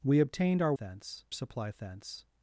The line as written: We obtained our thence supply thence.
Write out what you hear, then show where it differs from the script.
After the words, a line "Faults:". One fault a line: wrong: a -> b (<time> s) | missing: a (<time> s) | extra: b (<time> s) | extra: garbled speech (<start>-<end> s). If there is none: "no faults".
We obtained our thence supply thence.
Faults:
no faults